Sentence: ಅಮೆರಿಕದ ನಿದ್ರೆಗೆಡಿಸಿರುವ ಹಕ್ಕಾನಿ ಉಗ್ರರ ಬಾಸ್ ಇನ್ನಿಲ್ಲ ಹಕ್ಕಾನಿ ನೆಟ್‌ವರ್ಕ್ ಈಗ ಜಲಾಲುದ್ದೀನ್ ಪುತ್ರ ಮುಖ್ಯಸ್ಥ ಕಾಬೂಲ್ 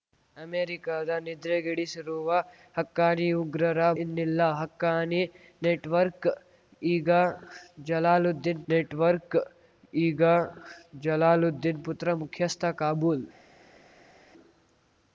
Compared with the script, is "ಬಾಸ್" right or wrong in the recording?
wrong